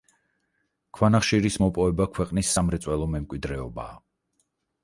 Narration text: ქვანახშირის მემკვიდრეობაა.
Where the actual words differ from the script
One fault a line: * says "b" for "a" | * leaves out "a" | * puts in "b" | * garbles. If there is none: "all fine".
* puts in "მოპოვება ქვეყნის სამრეწველო"